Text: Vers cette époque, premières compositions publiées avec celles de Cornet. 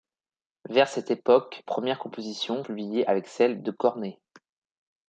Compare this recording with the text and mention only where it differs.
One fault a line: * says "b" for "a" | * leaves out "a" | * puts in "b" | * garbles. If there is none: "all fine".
all fine